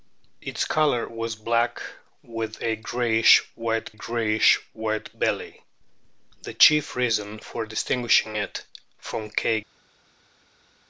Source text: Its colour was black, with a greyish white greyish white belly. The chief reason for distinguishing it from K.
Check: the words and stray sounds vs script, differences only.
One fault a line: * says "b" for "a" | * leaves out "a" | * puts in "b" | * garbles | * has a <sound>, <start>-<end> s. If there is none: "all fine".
all fine